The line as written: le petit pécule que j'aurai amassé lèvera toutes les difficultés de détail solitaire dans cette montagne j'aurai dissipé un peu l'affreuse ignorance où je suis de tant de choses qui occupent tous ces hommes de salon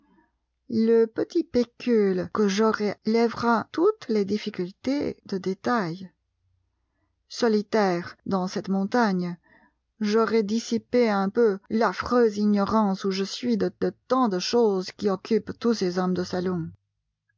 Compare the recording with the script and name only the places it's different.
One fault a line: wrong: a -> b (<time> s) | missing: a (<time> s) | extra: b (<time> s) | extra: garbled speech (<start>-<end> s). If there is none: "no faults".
missing: amassé (3.0 s)
extra: de (13.8 s)